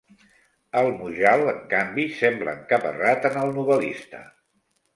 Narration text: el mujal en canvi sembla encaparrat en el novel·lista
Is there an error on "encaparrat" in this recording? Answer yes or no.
no